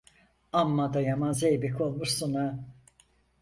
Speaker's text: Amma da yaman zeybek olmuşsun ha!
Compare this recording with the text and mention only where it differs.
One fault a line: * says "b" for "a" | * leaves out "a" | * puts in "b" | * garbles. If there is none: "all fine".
all fine